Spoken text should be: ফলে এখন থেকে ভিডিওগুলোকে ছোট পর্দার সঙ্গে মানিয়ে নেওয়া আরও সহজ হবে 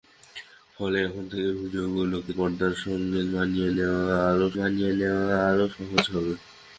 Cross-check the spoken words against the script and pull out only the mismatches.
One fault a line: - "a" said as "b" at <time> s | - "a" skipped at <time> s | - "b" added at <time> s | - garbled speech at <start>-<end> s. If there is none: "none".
- "ছোট" skipped at 2.3 s
- "মানিয়ে নেওয়া আরও" added at 4.6 s